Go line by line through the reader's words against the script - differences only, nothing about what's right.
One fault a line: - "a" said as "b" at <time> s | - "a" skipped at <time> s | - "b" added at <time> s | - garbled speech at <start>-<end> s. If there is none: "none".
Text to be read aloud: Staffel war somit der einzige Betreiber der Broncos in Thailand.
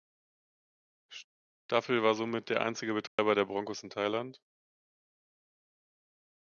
none